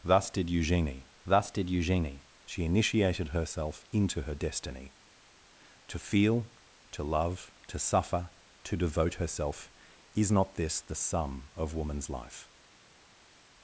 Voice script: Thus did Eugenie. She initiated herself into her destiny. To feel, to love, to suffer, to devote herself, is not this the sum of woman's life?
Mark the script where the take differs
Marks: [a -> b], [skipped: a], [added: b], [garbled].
Thus did Eugenie. [added: thus did Eugenie] She initiated herself into her destiny. To feel, to love, to suffer, to devote herself, is not this the sum of woman's life?